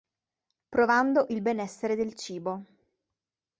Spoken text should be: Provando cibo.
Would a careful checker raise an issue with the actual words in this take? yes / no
yes